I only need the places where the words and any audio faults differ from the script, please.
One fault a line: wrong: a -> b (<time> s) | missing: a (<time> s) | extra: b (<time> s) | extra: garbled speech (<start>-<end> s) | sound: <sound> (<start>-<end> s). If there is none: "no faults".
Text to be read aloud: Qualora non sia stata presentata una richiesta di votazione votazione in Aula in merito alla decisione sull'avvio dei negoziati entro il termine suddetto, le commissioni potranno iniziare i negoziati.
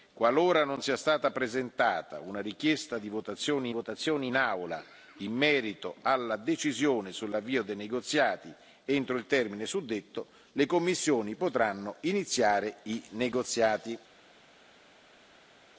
no faults